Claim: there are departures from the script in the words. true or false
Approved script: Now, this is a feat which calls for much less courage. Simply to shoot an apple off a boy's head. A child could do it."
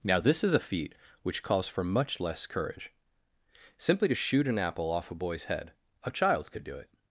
false